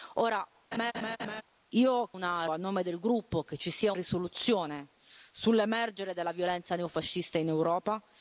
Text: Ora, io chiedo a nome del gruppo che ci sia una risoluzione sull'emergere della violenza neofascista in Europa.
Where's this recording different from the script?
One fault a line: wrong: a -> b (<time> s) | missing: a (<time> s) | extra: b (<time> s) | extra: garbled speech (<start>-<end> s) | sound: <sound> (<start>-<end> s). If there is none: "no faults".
sound: laugh (0.7-1.4 s)
wrong: chiedo -> una (2.1 s)
missing: una (3.9 s)